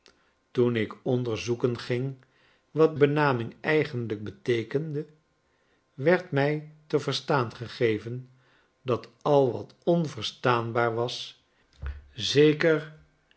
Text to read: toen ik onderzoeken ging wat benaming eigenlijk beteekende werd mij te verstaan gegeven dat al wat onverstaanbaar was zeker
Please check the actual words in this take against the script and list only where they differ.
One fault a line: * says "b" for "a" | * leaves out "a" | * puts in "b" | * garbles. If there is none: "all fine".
all fine